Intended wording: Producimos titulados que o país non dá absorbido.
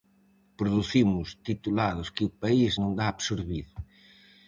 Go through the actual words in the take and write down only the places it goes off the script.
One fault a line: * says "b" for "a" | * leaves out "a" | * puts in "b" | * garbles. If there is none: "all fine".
all fine